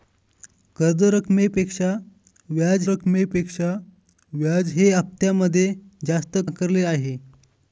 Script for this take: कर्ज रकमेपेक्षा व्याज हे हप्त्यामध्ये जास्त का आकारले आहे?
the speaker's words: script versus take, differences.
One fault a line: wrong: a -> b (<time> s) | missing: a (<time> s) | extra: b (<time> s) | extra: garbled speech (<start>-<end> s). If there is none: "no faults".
extra: रकमेपेक्षा व्याज (2.9 s)
missing: का (6.4 s)